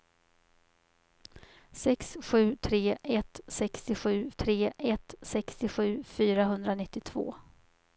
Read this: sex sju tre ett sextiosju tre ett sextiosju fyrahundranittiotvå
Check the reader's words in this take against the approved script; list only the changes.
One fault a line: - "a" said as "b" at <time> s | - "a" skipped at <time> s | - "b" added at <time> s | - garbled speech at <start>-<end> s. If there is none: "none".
none